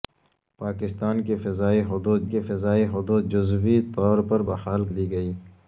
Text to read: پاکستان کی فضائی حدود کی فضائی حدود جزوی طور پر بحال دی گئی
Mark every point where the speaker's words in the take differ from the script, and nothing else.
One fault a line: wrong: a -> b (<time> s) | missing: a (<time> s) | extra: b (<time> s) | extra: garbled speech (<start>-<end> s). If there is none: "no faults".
no faults